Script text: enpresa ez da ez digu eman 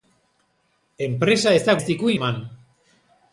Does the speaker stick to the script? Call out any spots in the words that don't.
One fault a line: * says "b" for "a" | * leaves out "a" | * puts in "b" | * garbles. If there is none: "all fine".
all fine